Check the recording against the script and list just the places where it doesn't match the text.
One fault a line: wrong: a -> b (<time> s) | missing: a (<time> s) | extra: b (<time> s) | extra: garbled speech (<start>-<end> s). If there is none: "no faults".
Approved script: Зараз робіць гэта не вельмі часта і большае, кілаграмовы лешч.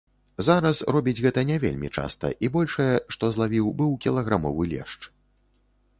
extra: што злавіў быў (3.2 s)